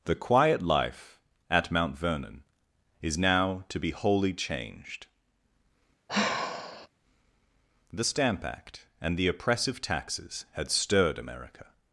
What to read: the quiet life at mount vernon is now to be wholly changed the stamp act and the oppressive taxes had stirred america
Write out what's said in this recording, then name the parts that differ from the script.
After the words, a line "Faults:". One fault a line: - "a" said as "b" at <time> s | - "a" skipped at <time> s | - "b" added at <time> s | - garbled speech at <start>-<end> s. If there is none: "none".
the quiet life at mount vernon is now to be wholly changed the stamp act and the oppressive taxes had stirred america
Faults:
none